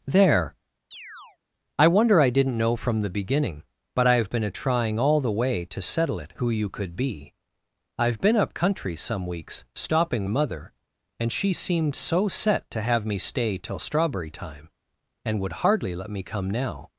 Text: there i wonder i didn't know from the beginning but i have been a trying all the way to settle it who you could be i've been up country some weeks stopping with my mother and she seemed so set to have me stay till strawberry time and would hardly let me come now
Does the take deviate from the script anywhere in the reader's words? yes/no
yes